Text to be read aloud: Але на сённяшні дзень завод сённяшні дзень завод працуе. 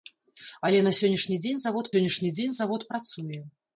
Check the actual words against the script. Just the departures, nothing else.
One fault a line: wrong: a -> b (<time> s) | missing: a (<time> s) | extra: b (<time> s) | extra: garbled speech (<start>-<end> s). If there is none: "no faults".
no faults